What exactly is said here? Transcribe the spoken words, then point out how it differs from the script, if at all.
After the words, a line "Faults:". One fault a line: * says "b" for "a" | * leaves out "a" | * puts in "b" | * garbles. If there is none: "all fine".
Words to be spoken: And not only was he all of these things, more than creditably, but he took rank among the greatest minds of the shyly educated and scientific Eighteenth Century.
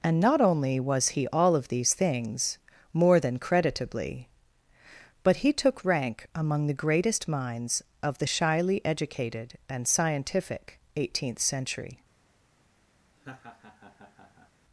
And not only was he all of these things, more than creditably, but he took rank among the greatest minds of the shyly educated and scientific Eighteenth Century.
Faults:
all fine